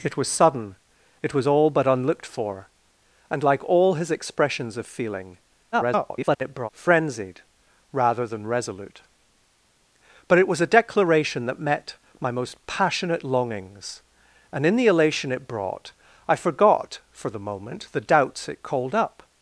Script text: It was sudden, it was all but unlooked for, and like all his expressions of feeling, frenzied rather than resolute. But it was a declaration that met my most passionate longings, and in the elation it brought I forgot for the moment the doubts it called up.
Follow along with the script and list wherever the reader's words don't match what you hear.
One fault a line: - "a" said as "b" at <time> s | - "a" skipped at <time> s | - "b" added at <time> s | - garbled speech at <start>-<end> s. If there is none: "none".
- garbled speech at 5.7-6.7 s